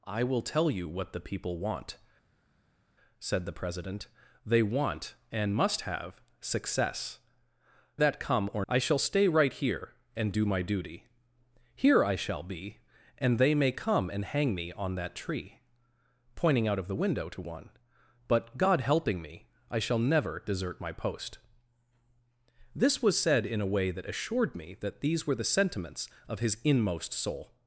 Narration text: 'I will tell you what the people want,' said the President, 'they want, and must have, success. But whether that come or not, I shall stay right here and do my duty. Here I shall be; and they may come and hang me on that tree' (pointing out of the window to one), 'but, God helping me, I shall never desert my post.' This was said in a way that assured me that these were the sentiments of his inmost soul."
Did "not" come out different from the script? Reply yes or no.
yes